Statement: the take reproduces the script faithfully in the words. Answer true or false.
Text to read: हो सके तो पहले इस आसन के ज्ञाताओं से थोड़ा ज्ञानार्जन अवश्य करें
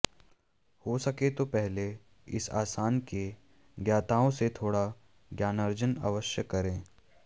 true